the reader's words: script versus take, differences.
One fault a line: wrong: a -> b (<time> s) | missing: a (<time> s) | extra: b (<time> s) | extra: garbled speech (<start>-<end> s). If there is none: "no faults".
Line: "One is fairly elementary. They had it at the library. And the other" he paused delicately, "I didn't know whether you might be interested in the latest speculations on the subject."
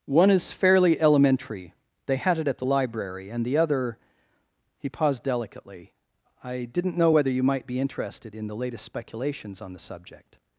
no faults